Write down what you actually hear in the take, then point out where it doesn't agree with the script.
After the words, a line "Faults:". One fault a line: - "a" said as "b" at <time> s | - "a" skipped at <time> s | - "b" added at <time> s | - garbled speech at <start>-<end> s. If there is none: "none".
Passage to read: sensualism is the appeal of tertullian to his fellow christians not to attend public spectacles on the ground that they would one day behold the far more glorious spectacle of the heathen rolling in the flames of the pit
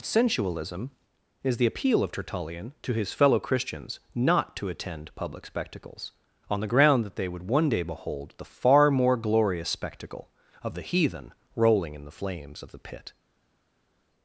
sensualism is the appeal of tertullian to his fellow christians not to attend public spectacles on the ground that they would one day behold the far more glorious spectacle of the heathen rolling in the flames of the pit
Faults:
none